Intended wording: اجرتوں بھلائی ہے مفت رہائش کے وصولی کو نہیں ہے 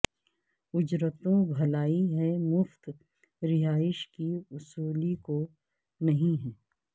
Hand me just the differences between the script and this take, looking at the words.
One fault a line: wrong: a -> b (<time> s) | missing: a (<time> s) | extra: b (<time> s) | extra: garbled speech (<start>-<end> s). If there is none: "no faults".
wrong: کے -> کی (4.1 s)